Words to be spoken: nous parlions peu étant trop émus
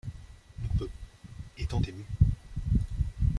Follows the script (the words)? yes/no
no